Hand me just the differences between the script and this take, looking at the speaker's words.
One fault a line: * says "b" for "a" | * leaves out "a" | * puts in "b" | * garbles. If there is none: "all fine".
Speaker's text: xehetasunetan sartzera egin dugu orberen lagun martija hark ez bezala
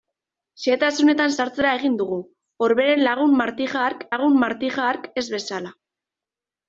* puts in "lagun martija hark"